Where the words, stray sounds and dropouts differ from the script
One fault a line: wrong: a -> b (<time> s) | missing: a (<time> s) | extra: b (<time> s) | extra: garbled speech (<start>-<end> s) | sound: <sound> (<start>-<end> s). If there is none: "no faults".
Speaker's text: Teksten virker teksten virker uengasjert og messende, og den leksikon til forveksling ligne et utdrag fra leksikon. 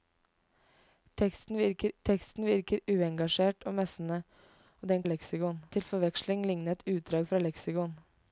no faults